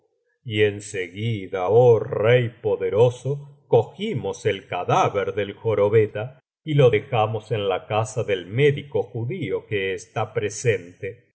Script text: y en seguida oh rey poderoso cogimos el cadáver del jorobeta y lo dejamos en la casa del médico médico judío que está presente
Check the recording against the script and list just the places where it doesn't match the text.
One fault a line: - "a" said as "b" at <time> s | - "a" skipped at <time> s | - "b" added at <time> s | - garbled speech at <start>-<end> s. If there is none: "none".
- "médico" skipped at 9.0 s